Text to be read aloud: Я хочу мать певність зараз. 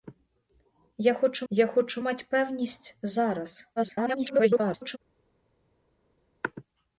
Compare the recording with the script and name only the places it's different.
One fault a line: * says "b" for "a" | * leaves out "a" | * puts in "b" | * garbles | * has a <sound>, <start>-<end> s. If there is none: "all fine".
* puts in "я хочу"
* garbles